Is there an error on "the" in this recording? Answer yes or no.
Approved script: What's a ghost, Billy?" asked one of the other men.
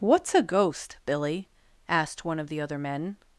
no